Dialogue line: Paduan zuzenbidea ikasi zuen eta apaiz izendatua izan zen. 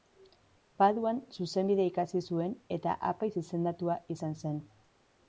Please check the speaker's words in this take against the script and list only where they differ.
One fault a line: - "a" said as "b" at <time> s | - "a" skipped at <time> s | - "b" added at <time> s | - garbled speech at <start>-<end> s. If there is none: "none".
none